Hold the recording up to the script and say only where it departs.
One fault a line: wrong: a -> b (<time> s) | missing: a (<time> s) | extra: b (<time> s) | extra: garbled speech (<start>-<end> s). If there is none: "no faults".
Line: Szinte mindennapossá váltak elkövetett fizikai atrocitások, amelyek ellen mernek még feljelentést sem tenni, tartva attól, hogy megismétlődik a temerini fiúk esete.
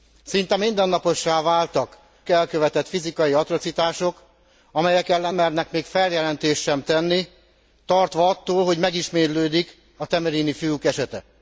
no faults